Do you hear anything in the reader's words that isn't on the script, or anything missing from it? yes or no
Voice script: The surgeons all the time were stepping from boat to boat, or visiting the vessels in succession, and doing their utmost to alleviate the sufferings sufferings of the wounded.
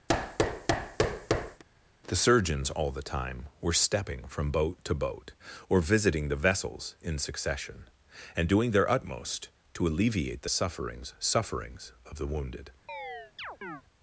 no